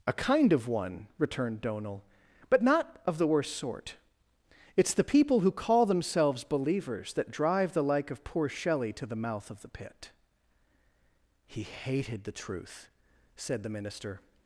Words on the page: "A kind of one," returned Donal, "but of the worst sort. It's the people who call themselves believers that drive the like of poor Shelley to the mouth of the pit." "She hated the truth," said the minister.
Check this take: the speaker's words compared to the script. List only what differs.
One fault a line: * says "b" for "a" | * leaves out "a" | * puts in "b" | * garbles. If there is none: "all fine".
* puts in "not"
* says "He" for "She"